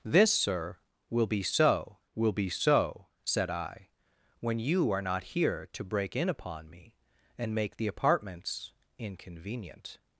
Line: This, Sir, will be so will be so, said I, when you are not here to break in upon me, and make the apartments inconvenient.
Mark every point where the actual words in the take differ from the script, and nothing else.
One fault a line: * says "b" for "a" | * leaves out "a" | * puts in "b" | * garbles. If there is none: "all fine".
all fine